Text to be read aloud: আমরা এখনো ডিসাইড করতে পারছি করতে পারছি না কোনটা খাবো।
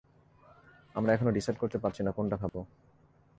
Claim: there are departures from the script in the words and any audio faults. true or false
true